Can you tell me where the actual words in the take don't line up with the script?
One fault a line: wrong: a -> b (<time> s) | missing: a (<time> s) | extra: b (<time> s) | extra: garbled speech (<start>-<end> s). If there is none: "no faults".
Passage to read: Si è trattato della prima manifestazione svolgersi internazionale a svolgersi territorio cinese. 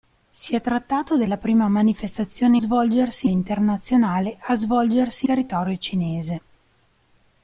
no faults